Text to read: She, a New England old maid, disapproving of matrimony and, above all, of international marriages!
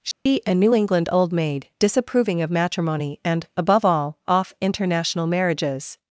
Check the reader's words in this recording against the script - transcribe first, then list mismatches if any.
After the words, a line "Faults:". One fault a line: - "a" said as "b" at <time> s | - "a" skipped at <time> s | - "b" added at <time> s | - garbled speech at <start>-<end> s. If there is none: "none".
She, a New England old maid, disapproving of matrimony and, above all, off international marriages!
Faults:
- "of" said as "off" at 4.3 s